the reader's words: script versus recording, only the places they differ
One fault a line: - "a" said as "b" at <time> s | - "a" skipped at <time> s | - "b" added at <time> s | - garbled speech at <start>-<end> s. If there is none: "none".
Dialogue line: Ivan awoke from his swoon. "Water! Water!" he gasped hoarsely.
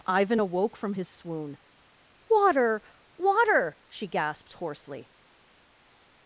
- "he" said as "she" at 3.9 s